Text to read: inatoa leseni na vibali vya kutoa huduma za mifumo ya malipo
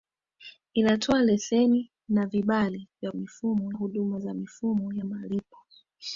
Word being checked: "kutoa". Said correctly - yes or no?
no